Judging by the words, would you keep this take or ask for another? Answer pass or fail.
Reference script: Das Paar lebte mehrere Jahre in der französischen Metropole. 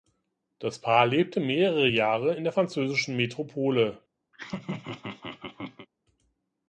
pass